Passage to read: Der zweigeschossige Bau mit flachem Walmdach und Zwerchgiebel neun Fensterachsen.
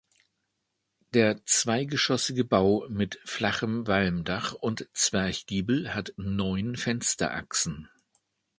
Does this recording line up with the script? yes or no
no